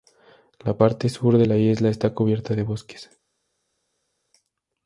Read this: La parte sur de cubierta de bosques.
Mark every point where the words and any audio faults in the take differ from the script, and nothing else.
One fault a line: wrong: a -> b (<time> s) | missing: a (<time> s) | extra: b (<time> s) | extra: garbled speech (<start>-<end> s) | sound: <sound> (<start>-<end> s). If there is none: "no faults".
extra: la isla está (1.4 s)